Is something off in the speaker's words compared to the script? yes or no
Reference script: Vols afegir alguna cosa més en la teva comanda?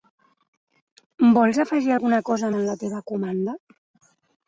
yes